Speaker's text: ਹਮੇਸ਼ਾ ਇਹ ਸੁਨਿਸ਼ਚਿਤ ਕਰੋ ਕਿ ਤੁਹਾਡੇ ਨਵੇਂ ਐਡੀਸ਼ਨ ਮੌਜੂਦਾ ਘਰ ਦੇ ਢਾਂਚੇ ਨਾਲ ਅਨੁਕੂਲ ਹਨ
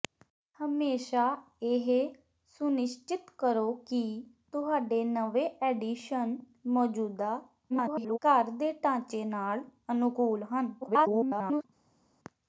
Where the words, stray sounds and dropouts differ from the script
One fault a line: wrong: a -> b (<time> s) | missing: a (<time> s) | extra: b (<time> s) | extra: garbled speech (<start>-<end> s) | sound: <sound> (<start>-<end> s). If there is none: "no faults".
extra: garbled speech (7.7-8.2 s)
extra: garbled speech (10.8-11.6 s)